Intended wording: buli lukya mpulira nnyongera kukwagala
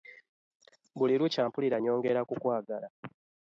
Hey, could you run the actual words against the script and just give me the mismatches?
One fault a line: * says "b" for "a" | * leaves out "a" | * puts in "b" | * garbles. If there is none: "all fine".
all fine